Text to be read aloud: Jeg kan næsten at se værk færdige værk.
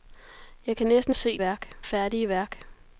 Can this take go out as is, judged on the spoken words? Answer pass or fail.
pass